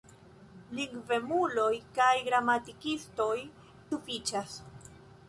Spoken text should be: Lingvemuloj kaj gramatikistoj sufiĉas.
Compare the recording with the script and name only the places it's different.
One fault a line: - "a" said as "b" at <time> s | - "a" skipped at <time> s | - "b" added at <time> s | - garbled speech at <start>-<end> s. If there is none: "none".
none